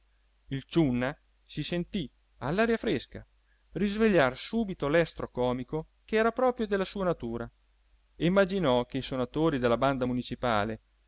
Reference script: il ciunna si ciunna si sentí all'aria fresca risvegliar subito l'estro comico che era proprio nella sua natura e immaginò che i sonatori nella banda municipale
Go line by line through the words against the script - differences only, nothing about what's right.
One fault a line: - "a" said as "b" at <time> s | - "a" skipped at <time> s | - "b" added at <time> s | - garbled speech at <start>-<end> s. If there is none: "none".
- "ciunna si" skipped at 1.6 s
- "nella" said as "della" at 6.7 s
- "nella" said as "della" at 9.6 s